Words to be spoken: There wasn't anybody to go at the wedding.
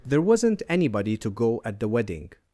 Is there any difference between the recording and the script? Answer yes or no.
no